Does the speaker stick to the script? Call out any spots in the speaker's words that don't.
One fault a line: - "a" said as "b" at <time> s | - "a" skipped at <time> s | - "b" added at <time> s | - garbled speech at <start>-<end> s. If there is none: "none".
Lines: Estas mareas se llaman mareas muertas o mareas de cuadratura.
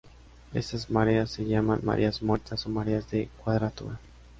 none